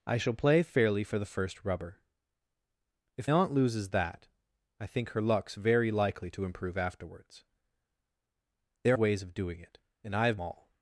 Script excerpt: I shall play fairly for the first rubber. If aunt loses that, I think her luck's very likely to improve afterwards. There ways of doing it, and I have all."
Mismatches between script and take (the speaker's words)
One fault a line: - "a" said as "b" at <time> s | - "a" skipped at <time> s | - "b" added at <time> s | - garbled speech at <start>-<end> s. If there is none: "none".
none